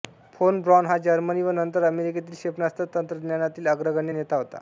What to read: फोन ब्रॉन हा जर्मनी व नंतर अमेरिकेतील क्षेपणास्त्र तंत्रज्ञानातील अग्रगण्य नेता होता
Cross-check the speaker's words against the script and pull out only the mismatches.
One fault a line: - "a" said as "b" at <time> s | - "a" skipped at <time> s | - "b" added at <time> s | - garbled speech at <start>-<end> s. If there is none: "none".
none